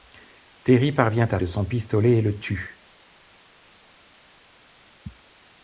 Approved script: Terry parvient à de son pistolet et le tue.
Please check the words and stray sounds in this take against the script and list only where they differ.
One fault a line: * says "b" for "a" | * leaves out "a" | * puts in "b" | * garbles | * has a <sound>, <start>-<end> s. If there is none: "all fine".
all fine